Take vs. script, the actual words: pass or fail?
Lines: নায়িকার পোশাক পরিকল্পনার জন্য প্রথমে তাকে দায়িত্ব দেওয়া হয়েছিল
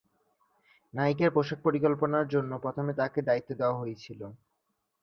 pass